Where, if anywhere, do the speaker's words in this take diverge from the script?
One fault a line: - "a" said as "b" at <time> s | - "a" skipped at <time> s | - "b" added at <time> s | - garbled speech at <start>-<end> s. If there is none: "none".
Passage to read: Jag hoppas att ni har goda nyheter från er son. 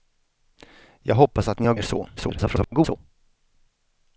- "goda nyheter från" skipped at 1.7 s
- garbled speech at 2.2-3.0 s